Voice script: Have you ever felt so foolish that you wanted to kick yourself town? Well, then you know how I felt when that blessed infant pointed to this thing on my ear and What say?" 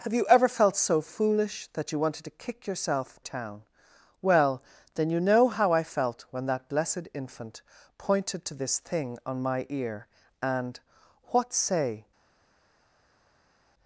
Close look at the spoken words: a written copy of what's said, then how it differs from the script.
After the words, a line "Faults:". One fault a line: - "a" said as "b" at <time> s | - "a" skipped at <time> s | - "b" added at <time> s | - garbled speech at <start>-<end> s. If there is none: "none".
Have you ever felt so foolish that you wanted to kick yourself town? Well, then you know how I felt when that blessed infant pointed to this thing on my ear and What say?"
Faults:
none